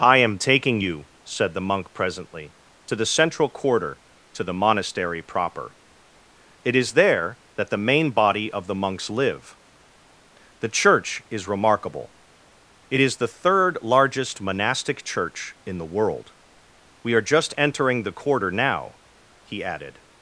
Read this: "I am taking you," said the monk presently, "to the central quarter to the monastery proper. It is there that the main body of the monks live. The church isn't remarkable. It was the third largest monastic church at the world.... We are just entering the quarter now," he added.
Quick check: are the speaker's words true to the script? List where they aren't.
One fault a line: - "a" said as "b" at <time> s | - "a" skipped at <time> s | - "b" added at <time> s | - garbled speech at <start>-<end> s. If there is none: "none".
- "isn't" said as "is" at 11.3 s
- "was" said as "is" at 13.0 s
- "at" said as "in" at 15.7 s